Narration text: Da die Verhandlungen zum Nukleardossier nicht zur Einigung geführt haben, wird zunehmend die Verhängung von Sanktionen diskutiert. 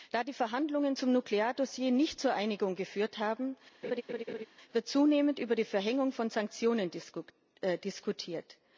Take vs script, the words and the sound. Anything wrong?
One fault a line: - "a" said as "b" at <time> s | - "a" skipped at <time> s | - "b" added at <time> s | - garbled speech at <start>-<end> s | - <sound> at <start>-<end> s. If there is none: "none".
- laugh at 3.8-4.5 s
- "über" added at 5.4 s